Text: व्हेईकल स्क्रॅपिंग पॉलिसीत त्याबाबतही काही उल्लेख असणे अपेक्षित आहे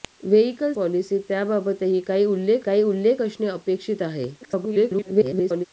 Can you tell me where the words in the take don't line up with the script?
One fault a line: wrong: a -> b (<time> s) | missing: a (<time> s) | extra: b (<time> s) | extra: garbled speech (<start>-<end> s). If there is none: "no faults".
missing: स्क्रॅपिंग (0.7 s)
extra: काही उल्लेख (2.6 s)
extra: garbled speech (4.4-5.7 s)